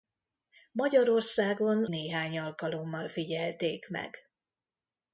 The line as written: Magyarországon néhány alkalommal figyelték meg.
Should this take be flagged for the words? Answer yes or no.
no